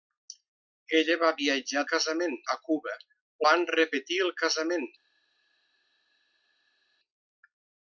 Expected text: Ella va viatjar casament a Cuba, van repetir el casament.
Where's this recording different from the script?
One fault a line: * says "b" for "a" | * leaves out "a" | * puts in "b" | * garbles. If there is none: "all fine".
all fine